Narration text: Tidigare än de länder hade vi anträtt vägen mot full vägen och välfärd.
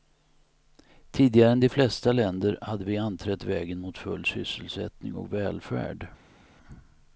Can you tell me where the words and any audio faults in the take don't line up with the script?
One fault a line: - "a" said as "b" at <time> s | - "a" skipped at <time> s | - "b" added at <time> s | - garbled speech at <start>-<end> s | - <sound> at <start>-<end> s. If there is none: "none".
- "flesta" added at 1.7 s
- "vägen" said as "sysselsättning" at 4.3 s